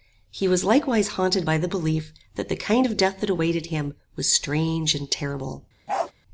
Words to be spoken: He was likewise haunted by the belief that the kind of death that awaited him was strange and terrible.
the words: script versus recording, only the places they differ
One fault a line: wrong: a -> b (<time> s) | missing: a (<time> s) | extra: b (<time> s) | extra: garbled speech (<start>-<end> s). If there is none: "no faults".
no faults